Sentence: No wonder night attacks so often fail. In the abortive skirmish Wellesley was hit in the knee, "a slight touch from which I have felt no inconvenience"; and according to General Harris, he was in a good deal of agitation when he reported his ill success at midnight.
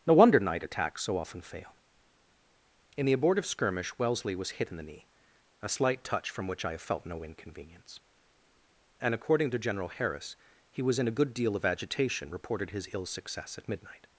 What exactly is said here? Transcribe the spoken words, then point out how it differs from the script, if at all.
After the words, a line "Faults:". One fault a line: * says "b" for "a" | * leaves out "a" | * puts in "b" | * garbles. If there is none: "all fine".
No wonder night attacks so often fail. In the abortive skirmish Wellesley was hit in the knee, "a slight touch from which I have felt no inconvenience"; and according to General Harris, he was in a good deal of agitation reported his ill success at midnight.
Faults:
* leaves out "when he"